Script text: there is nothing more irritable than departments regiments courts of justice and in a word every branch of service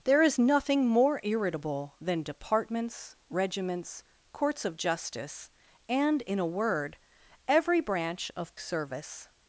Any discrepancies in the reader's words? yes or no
no